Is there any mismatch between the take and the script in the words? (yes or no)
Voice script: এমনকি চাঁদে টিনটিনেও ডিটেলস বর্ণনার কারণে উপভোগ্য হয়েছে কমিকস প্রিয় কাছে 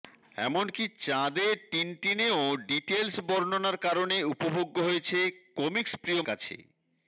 no